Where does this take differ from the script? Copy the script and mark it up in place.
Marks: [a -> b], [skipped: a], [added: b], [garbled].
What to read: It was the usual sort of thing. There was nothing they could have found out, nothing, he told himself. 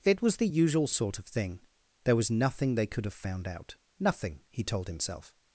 It was the usual sort of thing. There was nothing they could have found out, nothing, he told himself.